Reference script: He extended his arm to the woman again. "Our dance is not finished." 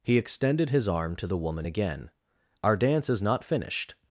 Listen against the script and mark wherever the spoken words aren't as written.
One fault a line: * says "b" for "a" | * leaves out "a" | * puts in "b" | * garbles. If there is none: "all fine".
all fine